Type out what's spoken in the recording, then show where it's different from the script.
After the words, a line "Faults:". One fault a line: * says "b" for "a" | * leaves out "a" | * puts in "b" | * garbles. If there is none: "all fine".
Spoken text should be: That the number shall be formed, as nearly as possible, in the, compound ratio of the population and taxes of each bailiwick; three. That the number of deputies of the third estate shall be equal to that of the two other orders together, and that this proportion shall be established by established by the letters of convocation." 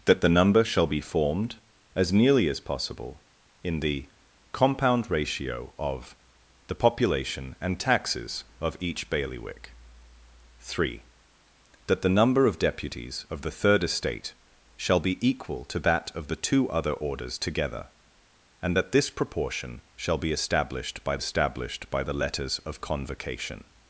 That the number shall be formed, as nearly as possible, in the, compound ratio of the population and taxes of each bailiwick; three. That the number of deputies of the third estate shall be equal to that of the two other orders together, and that this proportion shall be established by established by the letters of convocation."
Faults:
all fine